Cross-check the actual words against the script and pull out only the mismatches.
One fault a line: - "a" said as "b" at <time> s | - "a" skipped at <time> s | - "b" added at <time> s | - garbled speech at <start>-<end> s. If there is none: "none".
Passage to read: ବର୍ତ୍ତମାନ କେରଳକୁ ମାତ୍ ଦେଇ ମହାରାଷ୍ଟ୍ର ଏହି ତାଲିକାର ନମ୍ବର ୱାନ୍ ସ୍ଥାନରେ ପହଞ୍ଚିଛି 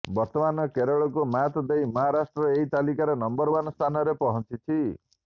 none